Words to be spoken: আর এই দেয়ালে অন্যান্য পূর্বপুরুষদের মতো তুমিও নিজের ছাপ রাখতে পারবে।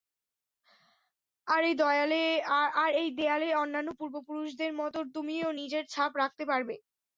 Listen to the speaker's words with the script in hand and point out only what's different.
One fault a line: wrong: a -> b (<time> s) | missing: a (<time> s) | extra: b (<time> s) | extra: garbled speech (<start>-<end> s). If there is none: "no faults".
no faults